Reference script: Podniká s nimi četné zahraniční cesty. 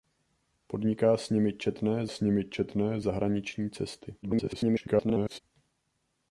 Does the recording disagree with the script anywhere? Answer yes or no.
yes